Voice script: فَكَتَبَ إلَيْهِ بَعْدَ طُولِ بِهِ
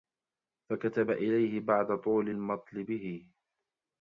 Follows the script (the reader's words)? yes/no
no